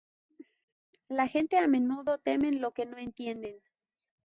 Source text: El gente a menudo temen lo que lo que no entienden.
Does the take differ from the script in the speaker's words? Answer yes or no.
yes